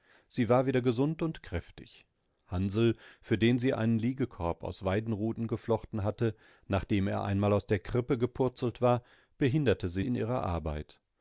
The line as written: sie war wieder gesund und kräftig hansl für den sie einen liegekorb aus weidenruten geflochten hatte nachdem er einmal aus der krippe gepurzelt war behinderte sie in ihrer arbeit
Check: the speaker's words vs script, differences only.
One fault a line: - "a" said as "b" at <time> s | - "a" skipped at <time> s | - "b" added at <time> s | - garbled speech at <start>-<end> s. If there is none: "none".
none